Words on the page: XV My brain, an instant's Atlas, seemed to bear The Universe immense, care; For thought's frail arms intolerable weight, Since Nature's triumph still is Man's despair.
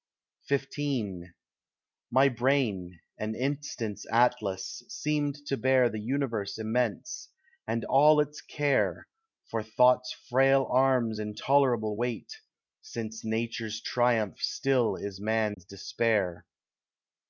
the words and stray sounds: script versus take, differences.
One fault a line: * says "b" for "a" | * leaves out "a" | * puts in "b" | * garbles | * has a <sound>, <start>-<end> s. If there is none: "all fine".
* puts in "and all its"
* has a dropout, 15.5-15.6 s